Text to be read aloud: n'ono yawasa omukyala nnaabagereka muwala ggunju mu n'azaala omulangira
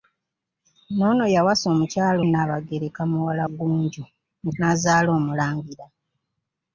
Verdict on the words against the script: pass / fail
pass